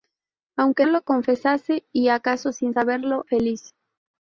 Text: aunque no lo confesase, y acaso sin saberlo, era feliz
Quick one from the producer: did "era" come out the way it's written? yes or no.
no